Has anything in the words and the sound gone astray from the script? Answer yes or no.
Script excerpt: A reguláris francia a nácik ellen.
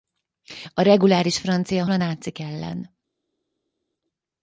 no